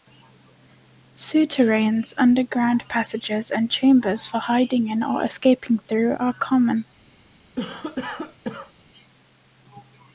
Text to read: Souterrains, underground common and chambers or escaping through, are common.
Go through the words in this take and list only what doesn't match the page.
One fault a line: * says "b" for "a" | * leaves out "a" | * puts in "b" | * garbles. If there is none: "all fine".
* says "passages" for "common"
* puts in "for hiding in"